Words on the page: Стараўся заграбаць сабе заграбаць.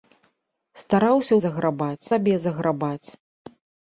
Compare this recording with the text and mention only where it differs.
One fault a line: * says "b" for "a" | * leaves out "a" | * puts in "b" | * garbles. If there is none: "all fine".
all fine